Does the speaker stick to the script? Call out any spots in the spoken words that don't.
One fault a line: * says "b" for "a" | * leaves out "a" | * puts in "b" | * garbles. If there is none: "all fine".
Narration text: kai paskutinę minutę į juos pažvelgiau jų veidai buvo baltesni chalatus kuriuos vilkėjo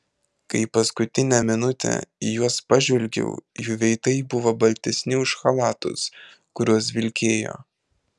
* puts in "už"